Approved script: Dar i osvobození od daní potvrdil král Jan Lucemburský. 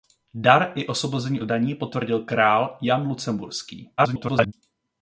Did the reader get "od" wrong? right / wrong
wrong